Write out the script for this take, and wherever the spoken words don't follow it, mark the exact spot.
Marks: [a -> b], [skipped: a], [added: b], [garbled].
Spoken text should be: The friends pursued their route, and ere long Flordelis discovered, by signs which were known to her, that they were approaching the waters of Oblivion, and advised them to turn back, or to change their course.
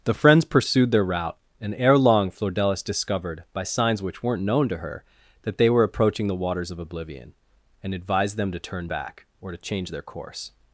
The friends pursued their route, and ere long Flordelis discovered, by signs which [were -> weren't] known to her, that they were approaching the waters of Oblivion, and advised them to turn back, or to change their course.